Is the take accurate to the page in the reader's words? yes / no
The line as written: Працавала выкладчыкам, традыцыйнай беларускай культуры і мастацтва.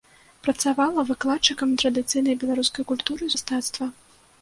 yes